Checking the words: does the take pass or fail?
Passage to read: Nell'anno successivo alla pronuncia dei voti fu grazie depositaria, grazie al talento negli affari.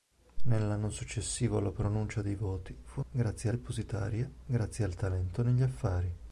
pass